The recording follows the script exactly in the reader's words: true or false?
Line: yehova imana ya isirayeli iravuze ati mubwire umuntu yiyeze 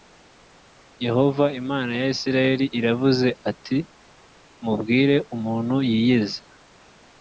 true